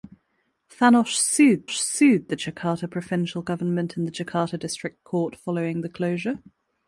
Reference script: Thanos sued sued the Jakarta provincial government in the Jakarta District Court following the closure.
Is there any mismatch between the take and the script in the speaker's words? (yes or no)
no